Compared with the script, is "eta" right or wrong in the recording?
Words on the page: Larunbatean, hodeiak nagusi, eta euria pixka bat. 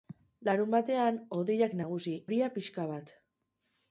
wrong